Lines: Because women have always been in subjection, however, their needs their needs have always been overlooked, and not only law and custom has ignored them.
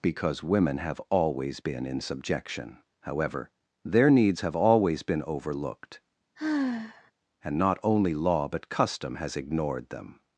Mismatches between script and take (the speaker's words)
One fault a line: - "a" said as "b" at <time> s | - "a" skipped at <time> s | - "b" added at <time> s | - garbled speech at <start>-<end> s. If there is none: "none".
- "their needs" skipped at 4.4 s
- "and" said as "but" at 8.5 s